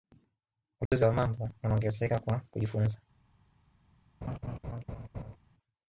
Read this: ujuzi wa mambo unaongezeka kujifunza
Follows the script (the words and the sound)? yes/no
no